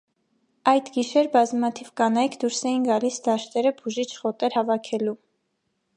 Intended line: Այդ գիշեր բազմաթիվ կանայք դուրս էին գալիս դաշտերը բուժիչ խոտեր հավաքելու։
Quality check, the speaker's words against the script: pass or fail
pass